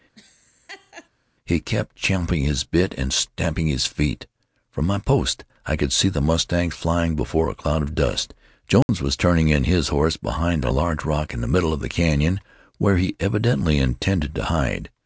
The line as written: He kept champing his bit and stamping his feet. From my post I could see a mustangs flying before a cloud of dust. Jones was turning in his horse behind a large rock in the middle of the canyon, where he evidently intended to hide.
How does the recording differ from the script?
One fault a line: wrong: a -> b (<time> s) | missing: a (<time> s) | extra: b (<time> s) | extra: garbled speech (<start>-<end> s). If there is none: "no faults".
wrong: a -> the (6.1 s)